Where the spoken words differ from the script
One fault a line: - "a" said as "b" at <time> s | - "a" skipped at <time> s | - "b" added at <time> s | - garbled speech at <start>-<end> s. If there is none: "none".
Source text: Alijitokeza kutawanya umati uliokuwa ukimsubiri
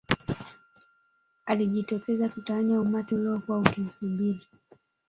none